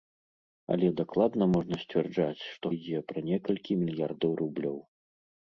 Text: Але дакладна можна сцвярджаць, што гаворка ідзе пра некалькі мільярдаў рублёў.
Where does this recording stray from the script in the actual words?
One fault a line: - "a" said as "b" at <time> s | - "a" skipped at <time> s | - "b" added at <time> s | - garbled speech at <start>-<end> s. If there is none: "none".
- "гаворка" skipped at 2.6 s